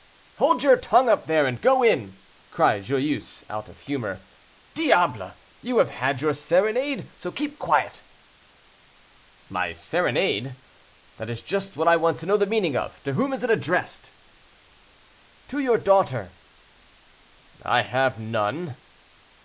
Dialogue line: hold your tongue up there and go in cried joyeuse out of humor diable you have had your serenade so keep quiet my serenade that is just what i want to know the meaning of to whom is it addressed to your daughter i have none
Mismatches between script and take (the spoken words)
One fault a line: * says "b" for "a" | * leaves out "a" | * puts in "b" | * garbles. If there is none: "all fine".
all fine